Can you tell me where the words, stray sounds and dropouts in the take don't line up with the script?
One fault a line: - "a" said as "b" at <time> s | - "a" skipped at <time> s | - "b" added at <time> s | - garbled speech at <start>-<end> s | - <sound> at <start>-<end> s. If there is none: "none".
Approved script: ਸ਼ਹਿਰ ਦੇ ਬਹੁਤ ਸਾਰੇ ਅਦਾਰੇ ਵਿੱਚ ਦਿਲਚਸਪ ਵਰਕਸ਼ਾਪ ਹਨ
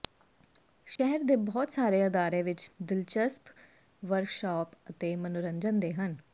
- dropout at 1.0-1.0 s
- "ਅਤੇ ਮਨੋਰੰਜਨ ਦੇ" added at 4.9 s